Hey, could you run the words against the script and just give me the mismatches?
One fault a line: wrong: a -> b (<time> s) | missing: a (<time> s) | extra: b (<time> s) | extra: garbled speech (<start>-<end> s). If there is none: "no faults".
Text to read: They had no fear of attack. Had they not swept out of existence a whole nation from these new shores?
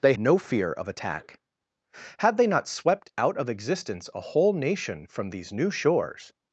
missing: had (0.1 s)